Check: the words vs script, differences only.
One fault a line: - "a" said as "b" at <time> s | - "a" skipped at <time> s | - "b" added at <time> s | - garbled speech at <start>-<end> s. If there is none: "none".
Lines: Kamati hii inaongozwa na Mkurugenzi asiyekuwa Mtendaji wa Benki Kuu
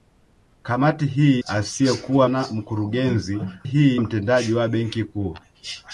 - "inaongozwa" said as "asiyekuwa" at 1.5 s
- "asiyekuwa" said as "hii" at 3.6 s